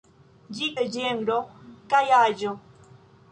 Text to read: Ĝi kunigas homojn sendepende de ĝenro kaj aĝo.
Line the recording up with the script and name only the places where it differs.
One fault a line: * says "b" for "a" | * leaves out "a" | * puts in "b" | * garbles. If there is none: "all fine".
* leaves out "kunigas homojn sendepende"